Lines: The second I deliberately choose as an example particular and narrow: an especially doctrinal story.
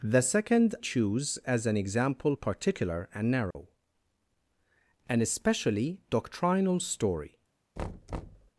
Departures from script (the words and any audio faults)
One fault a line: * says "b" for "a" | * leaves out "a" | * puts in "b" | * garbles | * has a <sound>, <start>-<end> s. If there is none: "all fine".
* leaves out "I deliberately"
* has a dropout, 3.5-3.6 s
* has a thud, 7.8-8.5 s